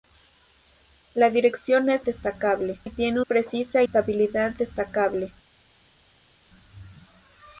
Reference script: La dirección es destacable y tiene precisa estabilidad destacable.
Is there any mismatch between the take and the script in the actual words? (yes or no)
no